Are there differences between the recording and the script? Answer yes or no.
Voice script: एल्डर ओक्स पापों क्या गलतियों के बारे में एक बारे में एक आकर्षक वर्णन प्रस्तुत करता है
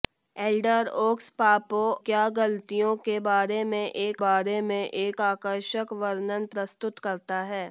no